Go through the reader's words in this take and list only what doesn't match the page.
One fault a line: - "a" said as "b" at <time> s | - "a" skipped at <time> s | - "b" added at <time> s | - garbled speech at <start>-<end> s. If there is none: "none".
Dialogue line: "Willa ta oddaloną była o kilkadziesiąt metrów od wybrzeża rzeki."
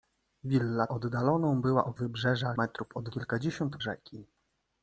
- "ta" skipped at 0.9 s
- "kilkadziesiąt" said as "wybrzeża" at 1.9 s
- "wybrzeża" said as "kilkadziesiąt" at 3.1 s